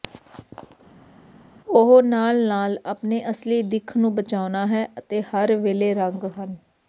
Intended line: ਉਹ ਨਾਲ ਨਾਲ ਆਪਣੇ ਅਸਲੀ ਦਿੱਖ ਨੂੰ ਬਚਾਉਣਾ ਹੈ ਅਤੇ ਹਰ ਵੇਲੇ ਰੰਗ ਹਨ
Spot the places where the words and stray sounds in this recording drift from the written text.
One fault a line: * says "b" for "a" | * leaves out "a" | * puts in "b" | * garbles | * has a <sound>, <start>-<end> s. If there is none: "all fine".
all fine